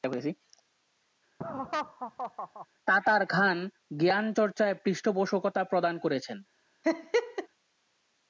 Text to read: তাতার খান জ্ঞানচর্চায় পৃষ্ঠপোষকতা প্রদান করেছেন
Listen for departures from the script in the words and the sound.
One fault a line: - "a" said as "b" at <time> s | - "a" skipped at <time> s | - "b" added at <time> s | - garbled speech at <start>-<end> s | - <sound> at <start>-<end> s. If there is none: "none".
- laugh at 1.4-2.7 s
- laugh at 6.8-7.5 s